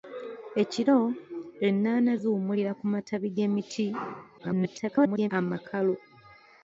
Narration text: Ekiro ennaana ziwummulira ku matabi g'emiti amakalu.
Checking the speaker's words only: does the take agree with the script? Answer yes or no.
no